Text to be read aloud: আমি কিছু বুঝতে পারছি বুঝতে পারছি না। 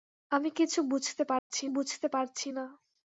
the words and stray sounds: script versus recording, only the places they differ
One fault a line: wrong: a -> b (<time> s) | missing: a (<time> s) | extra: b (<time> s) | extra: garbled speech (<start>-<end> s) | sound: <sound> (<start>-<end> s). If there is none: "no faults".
sound: dropout (1.4-1.5 s)